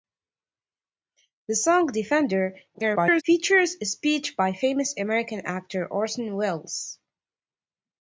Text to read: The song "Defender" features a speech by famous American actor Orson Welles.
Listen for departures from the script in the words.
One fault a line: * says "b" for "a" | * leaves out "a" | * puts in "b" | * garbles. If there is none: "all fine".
* garbles